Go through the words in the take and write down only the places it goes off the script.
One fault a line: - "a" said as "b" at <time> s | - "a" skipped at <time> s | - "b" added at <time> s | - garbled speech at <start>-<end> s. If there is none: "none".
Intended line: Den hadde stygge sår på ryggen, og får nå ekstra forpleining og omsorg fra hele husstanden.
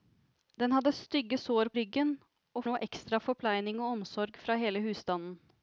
- "på" skipped at 1.7 s
- "får" skipped at 2.6 s